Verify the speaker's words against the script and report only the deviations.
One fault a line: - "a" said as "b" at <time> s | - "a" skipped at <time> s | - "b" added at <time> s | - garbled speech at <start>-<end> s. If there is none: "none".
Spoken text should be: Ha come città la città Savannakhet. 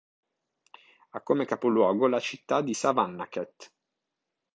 - "città" said as "capoluogo" at 1.4 s
- "di" added at 2.6 s